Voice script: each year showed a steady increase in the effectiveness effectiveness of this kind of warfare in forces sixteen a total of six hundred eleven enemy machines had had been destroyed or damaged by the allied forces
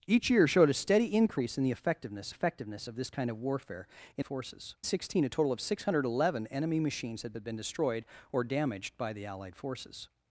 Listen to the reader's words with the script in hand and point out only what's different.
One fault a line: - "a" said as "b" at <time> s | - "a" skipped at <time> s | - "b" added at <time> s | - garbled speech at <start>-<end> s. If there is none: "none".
none